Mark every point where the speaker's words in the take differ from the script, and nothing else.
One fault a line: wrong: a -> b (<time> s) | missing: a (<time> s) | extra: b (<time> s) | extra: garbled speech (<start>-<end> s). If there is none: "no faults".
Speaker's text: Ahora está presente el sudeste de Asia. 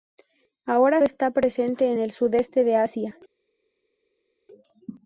no faults